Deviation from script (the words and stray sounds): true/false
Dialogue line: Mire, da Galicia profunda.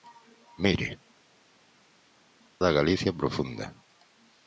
false